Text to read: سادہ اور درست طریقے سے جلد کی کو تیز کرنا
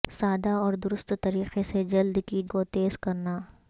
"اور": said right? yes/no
yes